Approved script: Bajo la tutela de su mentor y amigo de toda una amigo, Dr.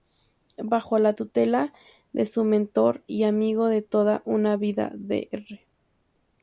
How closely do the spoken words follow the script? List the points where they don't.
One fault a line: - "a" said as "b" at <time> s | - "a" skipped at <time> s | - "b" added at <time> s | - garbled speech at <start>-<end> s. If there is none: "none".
- "amigo" said as "vida" at 4.6 s